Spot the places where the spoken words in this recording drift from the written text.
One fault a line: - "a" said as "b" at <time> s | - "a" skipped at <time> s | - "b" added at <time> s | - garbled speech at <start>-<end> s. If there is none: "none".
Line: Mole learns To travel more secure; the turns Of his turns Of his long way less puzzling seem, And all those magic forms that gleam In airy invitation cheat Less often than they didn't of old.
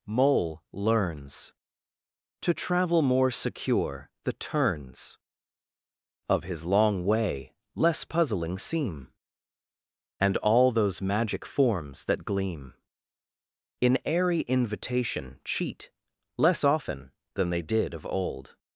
- "turns Of his" skipped at 6.7 s
- "didn't" said as "did" at 17.6 s